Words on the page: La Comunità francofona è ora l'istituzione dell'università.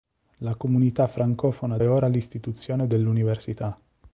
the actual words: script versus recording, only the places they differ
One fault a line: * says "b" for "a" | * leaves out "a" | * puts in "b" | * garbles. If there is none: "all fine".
all fine